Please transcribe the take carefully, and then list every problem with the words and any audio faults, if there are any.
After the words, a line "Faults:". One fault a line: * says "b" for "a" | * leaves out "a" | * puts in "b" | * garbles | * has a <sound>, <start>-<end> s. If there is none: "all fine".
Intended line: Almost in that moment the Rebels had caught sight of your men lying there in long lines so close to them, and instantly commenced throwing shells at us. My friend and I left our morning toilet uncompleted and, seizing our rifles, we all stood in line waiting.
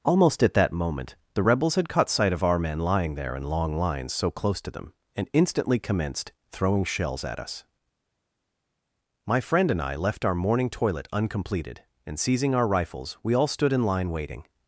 Almost at that moment the Rebels had caught sight of our men lying there in long lines so close to them, and instantly commenced throwing shells at us. My friend and I left our morning toilet uncompleted and, seizing our rifles, we all stood in line waiting.
Faults:
* says "at" for "in"
* says "our" for "your"